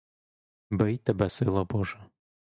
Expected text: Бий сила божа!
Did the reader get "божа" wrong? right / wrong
right